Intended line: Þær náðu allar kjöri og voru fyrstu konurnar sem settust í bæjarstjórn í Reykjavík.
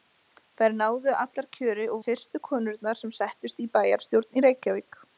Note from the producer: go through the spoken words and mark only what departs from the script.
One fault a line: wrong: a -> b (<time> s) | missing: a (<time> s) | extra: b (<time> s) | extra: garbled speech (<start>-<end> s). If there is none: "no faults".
missing: voru (2.0 s)